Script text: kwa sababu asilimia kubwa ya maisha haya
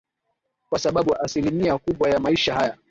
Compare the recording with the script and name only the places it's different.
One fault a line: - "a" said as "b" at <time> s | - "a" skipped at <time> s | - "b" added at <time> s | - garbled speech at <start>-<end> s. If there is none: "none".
none